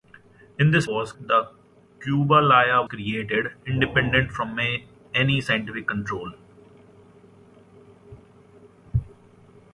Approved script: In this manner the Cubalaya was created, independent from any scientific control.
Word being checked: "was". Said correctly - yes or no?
no